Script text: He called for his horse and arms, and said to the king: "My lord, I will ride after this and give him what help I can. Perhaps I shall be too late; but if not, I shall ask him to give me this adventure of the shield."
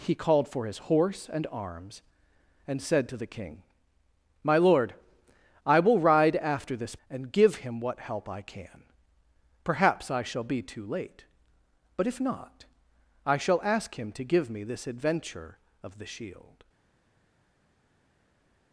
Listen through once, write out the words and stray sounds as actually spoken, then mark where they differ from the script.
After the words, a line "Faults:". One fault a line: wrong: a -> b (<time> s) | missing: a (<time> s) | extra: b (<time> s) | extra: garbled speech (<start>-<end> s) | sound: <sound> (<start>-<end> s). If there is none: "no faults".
He called for his horse and arms, and said to the king: "My lord, I will ride after this and give him what help I can. Perhaps I shall be too late; but if not, I shall ask him to give me this adventure of the shield."
Faults:
no faults